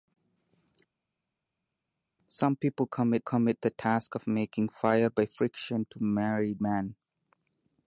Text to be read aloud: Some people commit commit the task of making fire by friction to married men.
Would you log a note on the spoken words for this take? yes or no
no